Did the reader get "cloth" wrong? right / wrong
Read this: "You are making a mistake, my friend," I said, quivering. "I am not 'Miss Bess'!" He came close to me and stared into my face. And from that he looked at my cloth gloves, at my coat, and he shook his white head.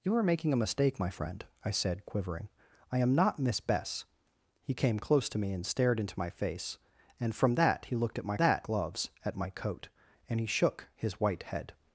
wrong